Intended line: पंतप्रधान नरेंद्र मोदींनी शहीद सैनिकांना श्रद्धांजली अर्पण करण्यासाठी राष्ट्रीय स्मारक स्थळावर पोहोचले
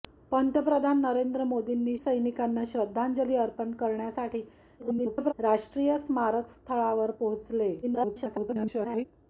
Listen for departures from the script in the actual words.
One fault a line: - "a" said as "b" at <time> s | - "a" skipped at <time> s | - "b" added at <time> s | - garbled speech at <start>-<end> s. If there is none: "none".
- "शहीद" skipped at 1.9 s
- garbled speech at 4.8-5.3 s
- garbled speech at 7.8-9.0 s